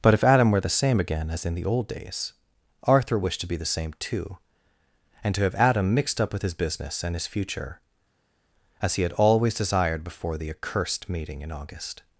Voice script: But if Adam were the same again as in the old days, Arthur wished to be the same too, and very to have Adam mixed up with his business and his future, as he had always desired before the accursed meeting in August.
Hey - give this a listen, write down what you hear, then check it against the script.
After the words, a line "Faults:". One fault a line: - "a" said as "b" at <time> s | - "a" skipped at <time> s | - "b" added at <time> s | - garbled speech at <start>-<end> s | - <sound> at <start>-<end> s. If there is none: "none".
But if Adam were the same again as in the old days, Arthur wished to be the same too, and to have Adam mixed up with his business and his future, as he had always desired before the accursed meeting in August.
Faults:
- "very" skipped at 5.3 s